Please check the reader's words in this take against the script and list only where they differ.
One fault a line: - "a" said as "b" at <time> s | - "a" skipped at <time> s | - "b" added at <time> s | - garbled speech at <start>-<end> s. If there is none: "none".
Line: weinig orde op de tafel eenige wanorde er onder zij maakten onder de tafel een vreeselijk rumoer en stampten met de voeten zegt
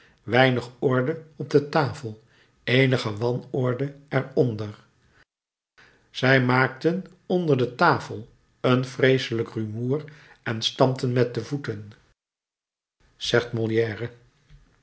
none